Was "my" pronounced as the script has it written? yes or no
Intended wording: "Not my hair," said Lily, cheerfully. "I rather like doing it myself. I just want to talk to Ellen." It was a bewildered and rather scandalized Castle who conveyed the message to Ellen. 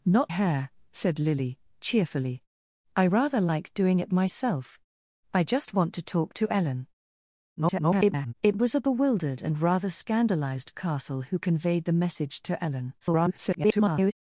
no